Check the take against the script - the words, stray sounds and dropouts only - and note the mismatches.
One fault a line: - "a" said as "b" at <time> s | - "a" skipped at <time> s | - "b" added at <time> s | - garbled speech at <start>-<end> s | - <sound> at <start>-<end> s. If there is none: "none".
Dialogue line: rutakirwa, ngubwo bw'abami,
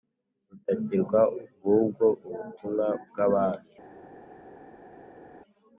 - "ubutumwa" added at 2.3 s